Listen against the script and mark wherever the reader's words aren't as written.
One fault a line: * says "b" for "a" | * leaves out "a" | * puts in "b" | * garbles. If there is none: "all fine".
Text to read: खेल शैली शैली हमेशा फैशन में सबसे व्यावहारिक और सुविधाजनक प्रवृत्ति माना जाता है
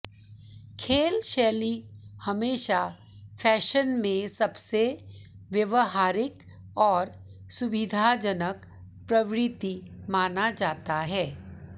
* leaves out "शैली"